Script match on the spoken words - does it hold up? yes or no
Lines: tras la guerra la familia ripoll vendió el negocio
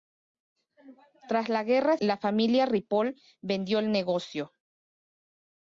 yes